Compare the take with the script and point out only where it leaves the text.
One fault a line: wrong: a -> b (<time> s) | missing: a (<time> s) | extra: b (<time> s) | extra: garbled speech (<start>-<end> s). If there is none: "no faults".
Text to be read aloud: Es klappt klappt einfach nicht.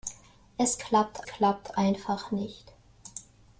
no faults